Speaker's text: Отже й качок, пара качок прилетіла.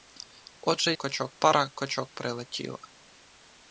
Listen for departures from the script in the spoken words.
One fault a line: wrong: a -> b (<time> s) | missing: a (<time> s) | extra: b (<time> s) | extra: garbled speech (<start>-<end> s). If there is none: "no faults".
no faults